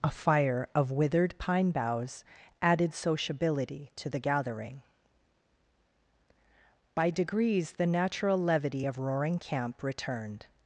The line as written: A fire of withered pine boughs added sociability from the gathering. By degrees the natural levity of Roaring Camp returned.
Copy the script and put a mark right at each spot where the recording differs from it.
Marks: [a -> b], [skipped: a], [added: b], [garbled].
A fire of withered pine boughs added sociability [from -> to] the gathering. By degrees the natural levity of Roaring Camp returned.